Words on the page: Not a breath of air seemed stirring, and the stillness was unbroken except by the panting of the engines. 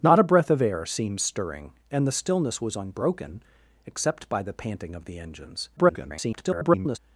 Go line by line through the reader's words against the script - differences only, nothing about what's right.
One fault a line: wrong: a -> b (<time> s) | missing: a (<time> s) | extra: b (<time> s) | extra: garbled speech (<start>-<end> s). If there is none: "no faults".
extra: garbled speech (5.8-7.0 s)